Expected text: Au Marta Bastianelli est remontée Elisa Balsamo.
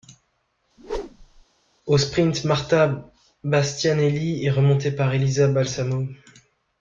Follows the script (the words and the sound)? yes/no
no